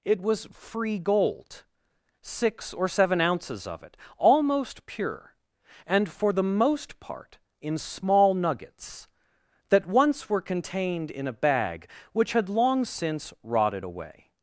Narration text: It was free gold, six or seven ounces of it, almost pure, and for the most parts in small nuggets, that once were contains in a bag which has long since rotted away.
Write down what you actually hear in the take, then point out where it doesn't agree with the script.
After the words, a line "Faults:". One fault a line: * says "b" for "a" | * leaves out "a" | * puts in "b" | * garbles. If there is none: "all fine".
It was free gold, six or seven ounces of it, almost pure, and for the most part in small nuggets, that once were contained in a bag which had long since rotted away.
Faults:
* says "part" for "parts"
* says "contained" for "contains"
* says "had" for "has"